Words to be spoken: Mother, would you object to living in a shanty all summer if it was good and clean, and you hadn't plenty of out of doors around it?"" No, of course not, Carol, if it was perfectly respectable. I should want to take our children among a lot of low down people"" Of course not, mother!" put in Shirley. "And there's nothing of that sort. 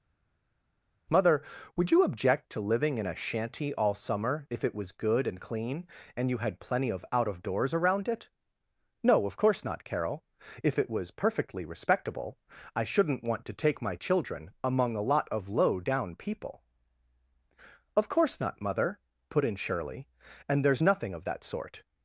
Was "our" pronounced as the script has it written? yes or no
no